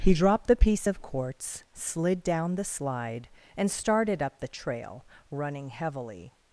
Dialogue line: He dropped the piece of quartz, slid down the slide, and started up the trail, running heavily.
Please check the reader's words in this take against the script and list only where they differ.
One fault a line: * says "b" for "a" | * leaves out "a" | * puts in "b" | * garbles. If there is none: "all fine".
all fine